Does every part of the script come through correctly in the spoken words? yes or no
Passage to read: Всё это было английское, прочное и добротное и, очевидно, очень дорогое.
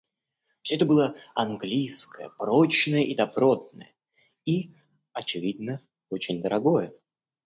yes